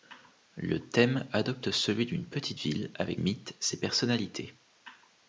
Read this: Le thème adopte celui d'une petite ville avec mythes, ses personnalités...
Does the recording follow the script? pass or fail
pass